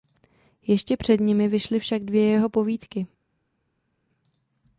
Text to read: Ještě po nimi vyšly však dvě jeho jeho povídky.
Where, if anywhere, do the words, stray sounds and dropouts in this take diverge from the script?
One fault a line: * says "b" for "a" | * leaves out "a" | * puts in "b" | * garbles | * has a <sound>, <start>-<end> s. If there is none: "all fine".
* says "před" for "po"
* leaves out "jeho"